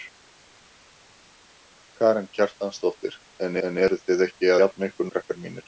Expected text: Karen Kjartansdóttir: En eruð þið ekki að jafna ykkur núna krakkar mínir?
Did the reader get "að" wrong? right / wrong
wrong